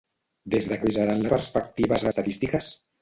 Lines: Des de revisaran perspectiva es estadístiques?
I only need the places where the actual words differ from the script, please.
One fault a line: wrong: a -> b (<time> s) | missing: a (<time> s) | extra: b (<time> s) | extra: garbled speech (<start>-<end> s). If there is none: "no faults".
no faults